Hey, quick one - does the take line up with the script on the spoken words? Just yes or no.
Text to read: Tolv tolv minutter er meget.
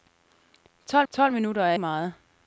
yes